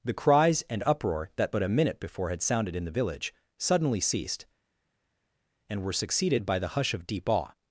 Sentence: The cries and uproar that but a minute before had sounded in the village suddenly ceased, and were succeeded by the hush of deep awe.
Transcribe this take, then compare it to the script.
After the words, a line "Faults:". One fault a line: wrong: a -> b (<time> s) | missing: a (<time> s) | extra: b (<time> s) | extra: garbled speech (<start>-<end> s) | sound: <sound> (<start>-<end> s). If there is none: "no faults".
The cries and uproar that but a minute before had sounded in the village suddenly ceased, and were succeeded by the hush of deep awe.
Faults:
no faults